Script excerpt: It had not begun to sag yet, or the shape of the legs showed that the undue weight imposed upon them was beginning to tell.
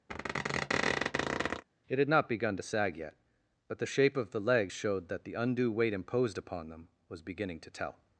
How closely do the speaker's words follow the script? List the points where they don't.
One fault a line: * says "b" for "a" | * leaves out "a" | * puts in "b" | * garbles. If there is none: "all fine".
* says "but" for "or"